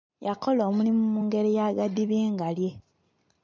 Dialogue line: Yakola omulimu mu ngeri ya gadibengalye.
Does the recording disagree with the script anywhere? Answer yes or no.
no